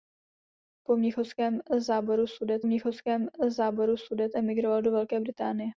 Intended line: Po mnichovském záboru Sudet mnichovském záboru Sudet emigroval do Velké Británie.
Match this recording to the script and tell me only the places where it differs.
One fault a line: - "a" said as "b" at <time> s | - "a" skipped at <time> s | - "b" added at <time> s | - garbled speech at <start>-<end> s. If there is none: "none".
none